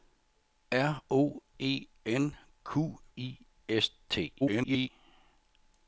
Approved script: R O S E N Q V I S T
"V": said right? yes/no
no